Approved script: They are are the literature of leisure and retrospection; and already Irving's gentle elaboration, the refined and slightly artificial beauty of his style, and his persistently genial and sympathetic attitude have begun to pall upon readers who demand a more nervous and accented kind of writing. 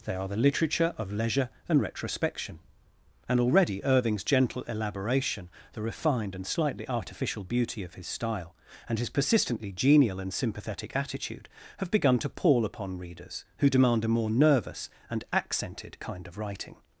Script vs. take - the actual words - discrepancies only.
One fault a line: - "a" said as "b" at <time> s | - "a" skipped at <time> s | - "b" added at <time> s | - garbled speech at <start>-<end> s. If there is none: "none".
- "are" skipped at 0.3 s